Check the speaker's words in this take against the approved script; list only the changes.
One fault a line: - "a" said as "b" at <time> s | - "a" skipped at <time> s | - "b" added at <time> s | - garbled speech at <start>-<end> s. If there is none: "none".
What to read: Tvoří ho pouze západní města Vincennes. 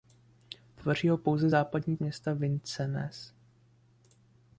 none